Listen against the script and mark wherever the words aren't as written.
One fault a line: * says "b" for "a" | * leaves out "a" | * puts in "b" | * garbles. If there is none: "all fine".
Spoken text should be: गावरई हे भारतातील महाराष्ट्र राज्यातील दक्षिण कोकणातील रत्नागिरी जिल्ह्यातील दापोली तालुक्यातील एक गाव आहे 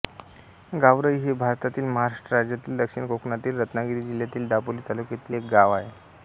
all fine